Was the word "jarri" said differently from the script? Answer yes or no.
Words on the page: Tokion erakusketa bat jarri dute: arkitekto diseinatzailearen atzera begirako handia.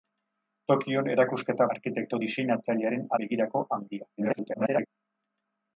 yes